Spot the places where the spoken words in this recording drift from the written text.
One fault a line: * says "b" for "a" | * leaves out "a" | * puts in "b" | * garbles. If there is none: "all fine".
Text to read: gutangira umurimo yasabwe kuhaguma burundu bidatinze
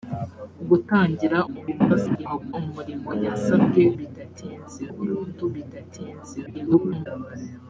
* garbles
* says "bidatinze" for "kuhaguma"
* garbles